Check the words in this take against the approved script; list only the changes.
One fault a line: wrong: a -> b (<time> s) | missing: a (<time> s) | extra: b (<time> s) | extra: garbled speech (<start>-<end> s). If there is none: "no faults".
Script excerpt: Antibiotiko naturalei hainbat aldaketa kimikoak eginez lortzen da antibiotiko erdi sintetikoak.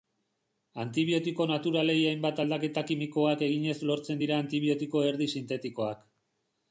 wrong: da -> dira (4.2 s)